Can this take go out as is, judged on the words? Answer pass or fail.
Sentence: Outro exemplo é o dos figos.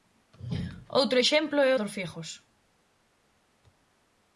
pass